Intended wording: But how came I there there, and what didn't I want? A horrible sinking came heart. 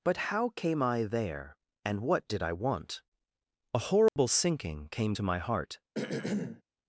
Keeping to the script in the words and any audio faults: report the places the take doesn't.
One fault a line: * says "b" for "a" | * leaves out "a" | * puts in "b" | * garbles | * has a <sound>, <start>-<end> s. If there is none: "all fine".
* leaves out "there"
* says "did" for "didn't"
* has a dropout, 4.1-4.2 s
* puts in "to my"
* has a throat clearing, 6.0-6.6 s